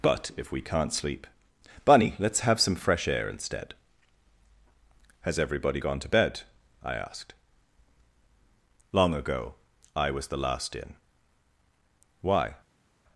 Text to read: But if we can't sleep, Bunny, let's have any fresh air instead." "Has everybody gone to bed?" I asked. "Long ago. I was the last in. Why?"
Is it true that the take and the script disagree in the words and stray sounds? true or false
true